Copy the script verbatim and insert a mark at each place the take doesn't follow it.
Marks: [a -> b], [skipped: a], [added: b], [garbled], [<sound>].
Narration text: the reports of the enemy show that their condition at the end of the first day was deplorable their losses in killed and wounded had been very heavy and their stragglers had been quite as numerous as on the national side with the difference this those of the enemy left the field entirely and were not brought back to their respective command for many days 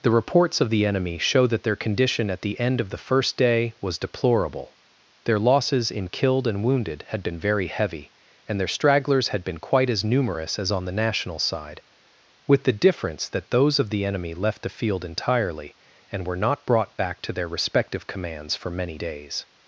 the reports of the enemy show that their condition at the end of the first day was deplorable their losses in killed and wounded had been very heavy and their stragglers had been quite as numerous as on the national side with the difference [this -> that] those of the enemy left the field entirely and were not brought back to their respective [command -> commands] for many days